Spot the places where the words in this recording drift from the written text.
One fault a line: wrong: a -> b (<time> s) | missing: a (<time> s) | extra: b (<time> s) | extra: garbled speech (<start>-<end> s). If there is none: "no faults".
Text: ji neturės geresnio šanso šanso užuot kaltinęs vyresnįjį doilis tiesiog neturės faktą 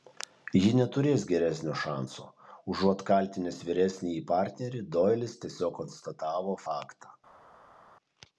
missing: šanso (2.2 s)
extra: partnerį (4.3 s)
wrong: neturės -> konstatavo (5.8 s)